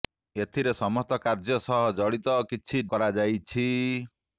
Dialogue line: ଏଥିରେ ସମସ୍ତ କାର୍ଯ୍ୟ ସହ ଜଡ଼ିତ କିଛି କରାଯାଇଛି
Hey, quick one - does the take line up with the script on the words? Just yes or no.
yes